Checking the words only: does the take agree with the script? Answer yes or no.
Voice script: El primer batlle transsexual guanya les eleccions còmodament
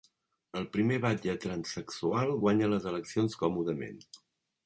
yes